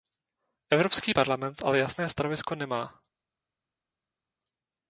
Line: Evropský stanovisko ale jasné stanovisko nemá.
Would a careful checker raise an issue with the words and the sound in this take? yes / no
yes